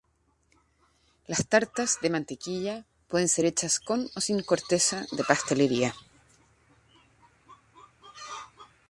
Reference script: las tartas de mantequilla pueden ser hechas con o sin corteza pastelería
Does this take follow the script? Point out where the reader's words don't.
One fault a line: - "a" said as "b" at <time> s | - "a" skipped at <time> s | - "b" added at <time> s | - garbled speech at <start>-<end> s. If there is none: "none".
- "de" added at 5.1 s